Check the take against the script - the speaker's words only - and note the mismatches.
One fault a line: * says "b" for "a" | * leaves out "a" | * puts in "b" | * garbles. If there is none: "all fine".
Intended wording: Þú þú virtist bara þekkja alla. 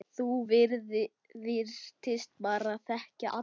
* leaves out "þú"